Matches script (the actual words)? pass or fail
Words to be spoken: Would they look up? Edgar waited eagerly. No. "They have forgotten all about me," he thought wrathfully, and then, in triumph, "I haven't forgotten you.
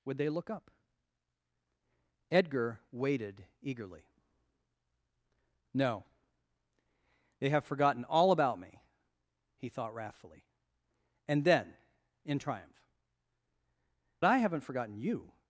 pass